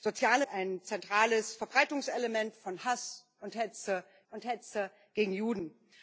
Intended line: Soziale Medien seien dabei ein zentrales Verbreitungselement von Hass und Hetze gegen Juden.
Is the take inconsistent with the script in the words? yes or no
yes